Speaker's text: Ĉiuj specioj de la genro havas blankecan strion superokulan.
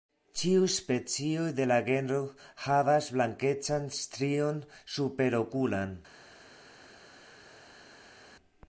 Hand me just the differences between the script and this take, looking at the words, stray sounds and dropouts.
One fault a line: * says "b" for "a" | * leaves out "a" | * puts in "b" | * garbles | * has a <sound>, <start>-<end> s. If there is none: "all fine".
all fine